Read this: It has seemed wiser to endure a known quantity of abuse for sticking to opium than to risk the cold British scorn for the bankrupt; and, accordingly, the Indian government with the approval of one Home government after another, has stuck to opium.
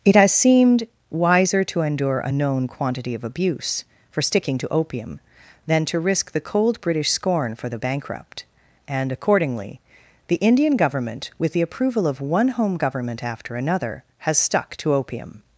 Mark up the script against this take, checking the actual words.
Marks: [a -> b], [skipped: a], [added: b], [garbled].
It has seemed wiser to endure a known quantity of abuse for sticking to opium than to risk the cold British scorn for the bankrupt; and, accordingly, the Indian government with the approval of one Home government after another, has stuck to opium.